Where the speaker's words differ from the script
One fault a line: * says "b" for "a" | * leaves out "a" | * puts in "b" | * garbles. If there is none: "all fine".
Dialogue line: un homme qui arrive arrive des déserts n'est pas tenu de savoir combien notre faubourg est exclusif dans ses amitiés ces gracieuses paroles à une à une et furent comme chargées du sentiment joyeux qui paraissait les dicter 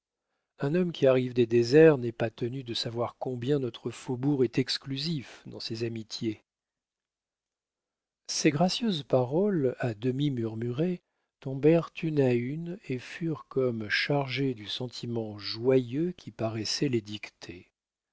* leaves out "arrive"
* puts in "demi murmurées tombèrent"